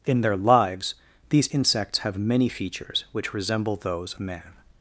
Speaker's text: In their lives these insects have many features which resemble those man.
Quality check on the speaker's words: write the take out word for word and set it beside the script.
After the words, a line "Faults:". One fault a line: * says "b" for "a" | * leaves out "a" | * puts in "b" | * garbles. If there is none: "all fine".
In their lives these insects have many features which resemble those man.
Faults:
all fine